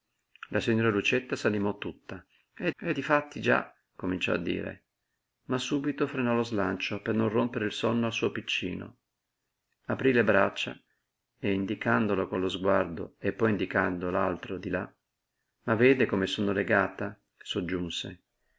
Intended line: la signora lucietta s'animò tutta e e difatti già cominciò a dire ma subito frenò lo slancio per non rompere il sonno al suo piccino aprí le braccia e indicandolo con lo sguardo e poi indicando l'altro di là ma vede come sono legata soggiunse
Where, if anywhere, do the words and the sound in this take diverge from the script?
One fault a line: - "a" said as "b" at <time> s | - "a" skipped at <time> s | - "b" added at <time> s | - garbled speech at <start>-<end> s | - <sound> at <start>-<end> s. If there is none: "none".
none